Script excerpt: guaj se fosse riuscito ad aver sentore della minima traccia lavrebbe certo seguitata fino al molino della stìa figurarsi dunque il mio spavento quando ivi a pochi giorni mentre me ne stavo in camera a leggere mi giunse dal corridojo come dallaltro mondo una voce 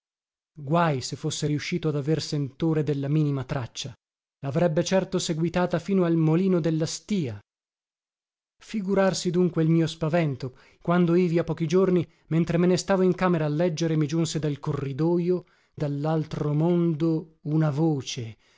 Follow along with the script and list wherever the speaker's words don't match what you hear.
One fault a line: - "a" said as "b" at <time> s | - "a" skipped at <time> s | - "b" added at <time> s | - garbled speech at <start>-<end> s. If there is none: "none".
- "come" skipped at 15.4 s